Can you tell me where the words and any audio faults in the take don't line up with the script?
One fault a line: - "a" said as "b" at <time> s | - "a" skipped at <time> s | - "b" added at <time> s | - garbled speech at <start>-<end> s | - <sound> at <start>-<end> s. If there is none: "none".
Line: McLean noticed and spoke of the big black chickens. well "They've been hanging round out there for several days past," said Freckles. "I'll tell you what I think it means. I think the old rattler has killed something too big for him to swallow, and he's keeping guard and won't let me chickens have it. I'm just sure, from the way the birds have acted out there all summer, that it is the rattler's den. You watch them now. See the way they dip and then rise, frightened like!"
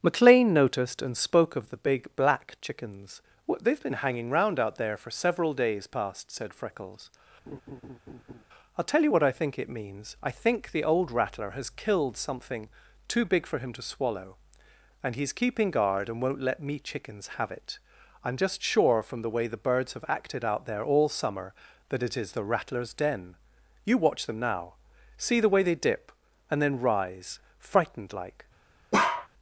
- laugh at 7.5-8.4 s
- bark at 28.9-29.3 s